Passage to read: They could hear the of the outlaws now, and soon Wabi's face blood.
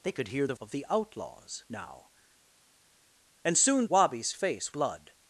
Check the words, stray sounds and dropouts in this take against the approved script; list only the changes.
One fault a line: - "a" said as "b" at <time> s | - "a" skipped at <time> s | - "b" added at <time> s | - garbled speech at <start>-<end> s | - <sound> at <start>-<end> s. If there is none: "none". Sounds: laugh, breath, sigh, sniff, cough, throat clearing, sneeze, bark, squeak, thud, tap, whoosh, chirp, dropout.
none